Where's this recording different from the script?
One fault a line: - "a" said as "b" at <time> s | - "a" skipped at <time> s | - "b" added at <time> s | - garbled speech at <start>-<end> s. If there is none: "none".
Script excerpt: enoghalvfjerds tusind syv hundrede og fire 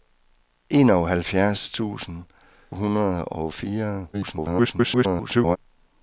- "syv" skipped at 2.2 s
- garbled speech at 4.1-5.6 s